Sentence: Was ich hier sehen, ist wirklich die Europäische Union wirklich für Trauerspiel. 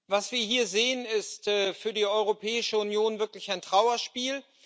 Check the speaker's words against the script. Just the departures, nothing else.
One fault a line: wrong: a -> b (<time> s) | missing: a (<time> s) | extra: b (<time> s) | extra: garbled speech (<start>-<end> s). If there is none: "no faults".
wrong: ich -> wir (0.3 s)
wrong: wirklich -> für (1.4 s)
wrong: für -> ein (3.5 s)